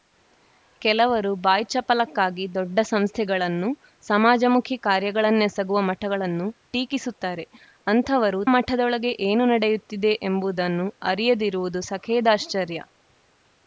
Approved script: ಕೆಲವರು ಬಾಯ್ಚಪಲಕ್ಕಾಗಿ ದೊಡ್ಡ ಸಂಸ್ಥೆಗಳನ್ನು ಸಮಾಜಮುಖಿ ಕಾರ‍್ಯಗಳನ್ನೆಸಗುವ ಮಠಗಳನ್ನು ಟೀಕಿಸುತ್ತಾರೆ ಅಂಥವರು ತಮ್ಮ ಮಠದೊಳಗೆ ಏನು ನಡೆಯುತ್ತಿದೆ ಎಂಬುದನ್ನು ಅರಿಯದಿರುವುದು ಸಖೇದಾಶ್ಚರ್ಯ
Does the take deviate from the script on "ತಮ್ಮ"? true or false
true